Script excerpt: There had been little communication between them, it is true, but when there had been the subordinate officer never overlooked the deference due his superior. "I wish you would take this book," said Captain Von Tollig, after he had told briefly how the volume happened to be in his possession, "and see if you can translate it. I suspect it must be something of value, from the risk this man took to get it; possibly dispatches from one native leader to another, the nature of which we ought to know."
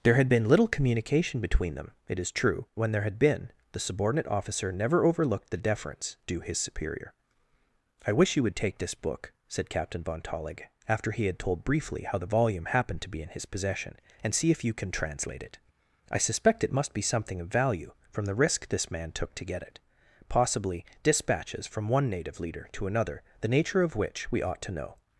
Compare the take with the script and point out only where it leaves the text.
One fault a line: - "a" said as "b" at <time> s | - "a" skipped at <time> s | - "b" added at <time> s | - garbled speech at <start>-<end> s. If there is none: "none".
- "but" skipped at 2.6 s